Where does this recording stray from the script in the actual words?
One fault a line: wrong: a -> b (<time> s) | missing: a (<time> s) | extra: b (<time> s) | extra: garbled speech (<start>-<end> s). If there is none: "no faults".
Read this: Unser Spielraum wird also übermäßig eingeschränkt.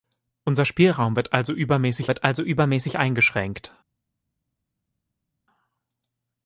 extra: wird also übermäßig (2.1 s)